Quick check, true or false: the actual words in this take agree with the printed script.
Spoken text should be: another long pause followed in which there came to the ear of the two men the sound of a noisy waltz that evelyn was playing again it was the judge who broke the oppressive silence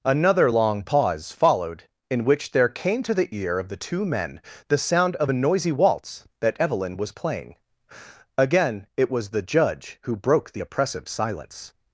true